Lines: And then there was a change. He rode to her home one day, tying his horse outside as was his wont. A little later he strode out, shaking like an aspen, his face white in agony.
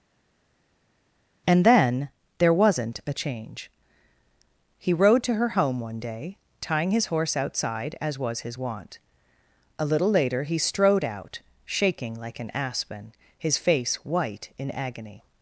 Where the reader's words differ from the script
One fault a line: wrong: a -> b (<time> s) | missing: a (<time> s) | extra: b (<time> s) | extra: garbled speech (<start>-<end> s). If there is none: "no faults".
wrong: was -> wasn't (2.5 s)